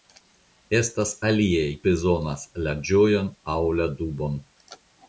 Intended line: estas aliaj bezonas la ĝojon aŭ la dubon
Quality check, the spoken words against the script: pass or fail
pass